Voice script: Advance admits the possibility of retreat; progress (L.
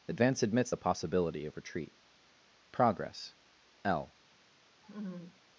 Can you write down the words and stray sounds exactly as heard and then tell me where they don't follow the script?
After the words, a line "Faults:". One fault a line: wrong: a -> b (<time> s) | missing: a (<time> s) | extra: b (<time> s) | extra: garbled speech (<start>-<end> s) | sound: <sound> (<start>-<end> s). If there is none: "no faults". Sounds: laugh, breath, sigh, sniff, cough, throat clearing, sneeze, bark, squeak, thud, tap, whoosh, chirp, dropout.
Advance admits the possibility of retreat; progress (L.
Faults:
sound: laugh (4.8-5.4 s)